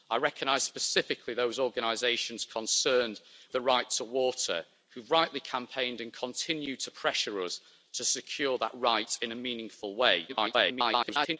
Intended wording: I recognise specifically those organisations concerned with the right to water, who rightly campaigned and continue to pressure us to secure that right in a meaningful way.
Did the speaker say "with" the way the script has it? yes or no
no